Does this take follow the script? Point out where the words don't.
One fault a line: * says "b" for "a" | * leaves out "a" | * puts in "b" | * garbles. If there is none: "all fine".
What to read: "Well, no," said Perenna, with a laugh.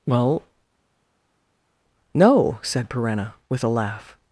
all fine